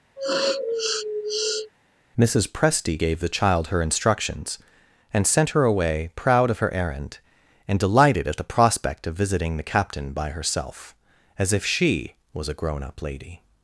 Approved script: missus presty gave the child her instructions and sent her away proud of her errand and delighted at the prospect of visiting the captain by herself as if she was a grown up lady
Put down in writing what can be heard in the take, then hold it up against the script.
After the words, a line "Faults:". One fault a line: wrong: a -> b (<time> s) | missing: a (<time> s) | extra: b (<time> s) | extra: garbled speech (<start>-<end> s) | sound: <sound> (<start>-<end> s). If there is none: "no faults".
missus presty gave the child her instructions and sent her away proud of her errand and delighted at the prospect of visiting the captain by herself as if she was a grown up lady
Faults:
sound: sniff (0.2-1.7 s)